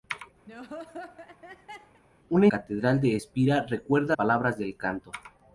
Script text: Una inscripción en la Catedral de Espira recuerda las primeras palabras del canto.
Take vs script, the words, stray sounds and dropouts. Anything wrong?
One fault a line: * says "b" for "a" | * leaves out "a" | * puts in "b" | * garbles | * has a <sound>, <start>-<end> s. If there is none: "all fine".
* has a laugh, 0.5-2.0 s
* leaves out "inscripción en la"
* leaves out "las primeras"